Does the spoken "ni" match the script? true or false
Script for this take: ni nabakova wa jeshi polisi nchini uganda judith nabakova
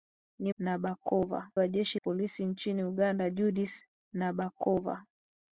true